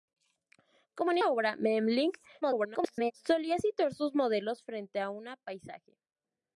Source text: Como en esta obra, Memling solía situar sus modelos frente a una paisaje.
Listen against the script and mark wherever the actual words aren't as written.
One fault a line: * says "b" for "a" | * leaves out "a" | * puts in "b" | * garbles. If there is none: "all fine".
* leaves out "esta"
* garbles